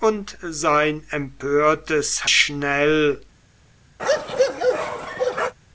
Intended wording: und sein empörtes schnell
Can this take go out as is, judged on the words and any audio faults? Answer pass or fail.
fail